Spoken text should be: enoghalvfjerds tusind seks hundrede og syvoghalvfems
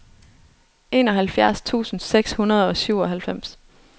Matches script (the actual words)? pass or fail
pass